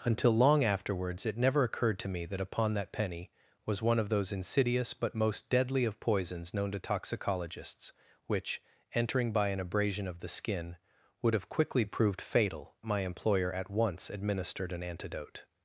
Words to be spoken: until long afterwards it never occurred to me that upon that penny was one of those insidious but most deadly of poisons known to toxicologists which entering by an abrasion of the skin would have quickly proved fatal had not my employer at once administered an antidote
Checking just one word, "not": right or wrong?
wrong